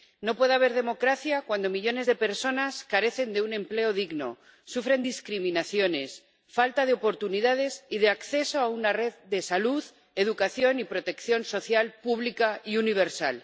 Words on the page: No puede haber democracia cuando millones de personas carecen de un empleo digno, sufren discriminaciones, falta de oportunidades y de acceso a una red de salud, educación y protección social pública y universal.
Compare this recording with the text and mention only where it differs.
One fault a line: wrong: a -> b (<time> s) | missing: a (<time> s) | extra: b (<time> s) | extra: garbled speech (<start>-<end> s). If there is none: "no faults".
no faults